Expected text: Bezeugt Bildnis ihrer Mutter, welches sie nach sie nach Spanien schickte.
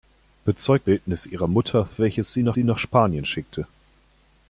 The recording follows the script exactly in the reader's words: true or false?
true